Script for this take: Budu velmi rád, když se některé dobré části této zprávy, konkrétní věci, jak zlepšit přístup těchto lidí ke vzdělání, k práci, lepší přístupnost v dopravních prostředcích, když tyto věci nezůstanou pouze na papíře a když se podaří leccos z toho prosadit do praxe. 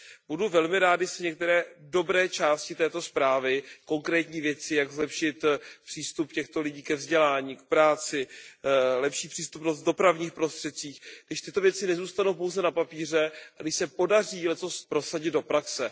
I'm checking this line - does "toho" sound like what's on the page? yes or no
no